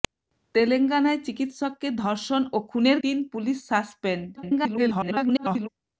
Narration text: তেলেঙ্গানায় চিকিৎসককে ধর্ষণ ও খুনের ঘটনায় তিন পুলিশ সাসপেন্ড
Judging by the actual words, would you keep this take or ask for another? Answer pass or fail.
fail